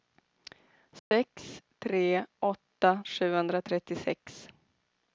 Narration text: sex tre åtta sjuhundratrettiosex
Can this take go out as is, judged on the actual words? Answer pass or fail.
pass